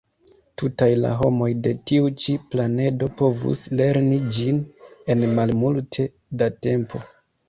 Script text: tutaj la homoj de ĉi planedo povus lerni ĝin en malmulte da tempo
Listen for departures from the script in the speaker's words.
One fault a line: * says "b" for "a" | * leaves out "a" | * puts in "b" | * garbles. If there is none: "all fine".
* puts in "tiu"